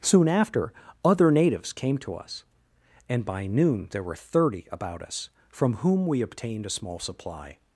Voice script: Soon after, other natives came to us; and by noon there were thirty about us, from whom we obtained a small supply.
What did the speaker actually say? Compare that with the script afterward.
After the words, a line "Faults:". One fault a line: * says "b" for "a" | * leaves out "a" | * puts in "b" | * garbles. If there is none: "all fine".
Soon after, other natives came to us; and by noon there were thirty about us, from whom we obtained a small supply.
Faults:
all fine